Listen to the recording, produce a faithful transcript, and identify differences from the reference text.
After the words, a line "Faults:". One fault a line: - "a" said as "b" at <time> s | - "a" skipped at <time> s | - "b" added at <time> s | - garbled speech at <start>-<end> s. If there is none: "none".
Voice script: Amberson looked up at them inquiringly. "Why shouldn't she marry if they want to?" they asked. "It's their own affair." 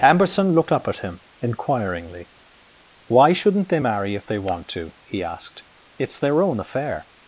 Amberson looked up at him inquiringly. "Why shouldn't they marry if they want to?" he asked. "It's their own affair."
Faults:
- "them" said as "him" at 1.0 s
- "she" said as "they" at 3.7 s
- "they" said as "he" at 5.0 s